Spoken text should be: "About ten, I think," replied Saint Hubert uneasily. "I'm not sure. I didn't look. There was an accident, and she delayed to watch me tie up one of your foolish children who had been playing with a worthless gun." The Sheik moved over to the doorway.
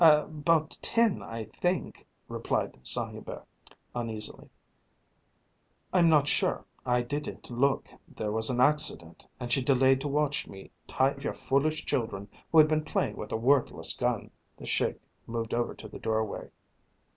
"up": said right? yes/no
no